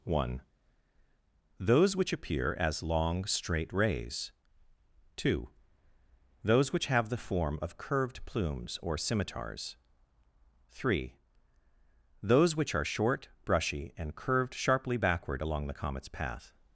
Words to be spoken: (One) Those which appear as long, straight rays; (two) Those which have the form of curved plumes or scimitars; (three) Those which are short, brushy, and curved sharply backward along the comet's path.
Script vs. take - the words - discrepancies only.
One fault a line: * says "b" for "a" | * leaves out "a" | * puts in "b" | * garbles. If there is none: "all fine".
all fine